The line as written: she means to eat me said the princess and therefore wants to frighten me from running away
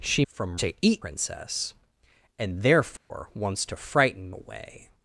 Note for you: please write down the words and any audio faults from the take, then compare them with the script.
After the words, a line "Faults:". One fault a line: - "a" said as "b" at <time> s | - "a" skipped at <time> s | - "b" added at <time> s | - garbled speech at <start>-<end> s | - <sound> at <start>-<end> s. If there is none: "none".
she from to eat princess and therefore wants to frighten away
Faults:
- "means" said as "from" at 0.3 s
- "me said the" skipped at 1.1 s
- dropout at 3.0-3.1 s
- "me from running" skipped at 4.3 s